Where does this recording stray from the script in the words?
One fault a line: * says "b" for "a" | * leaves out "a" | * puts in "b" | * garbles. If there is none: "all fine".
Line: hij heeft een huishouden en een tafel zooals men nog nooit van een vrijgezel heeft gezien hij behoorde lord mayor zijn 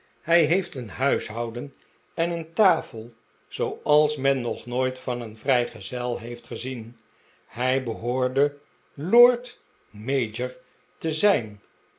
* puts in "te"